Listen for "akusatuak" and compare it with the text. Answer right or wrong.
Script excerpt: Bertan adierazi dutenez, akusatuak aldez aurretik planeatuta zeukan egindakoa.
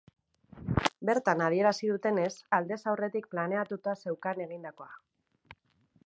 wrong